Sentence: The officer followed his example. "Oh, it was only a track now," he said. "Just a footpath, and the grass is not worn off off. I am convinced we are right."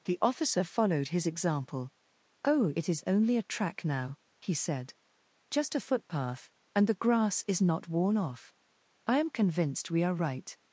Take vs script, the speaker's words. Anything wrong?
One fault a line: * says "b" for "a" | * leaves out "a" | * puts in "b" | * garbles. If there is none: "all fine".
* says "is" for "was"
* leaves out "off"